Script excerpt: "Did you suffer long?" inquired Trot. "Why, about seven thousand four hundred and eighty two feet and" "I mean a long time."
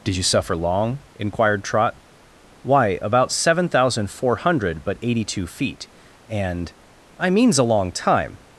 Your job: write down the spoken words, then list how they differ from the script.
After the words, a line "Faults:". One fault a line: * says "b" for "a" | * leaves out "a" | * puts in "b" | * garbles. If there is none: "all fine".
"Did you suffer long?" inquired Trot. "Why, about seven thousand four hundred but eighty two feet and" "I means a long time."
Faults:
* says "but" for "and"
* says "means" for "mean"